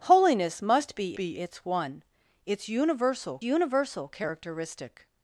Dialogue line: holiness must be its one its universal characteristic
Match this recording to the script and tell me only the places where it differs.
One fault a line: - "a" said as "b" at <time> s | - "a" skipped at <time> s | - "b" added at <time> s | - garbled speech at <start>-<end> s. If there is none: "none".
- "be" added at 1.1 s
- "universal" added at 3.4 s